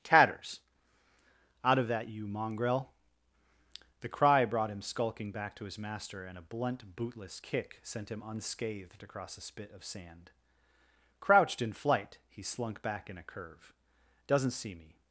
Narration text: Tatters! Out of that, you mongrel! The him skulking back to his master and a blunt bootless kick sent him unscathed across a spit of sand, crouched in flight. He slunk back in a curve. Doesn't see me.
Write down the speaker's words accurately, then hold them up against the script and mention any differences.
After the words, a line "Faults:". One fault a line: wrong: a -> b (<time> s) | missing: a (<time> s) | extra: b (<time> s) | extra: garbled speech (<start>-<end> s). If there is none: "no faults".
Tatters! Out of that, you mongrel! The cry brought him skulking back to his master and a blunt bootless kick sent him unscathed across a spit of sand, crouched in flight. He slunk back in a curve. Doesn't see me.
Faults:
extra: cry brought (4.1 s)